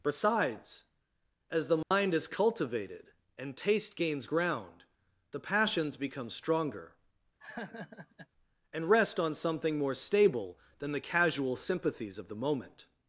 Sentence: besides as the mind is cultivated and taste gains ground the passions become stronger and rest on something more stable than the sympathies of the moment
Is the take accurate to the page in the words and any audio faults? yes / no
no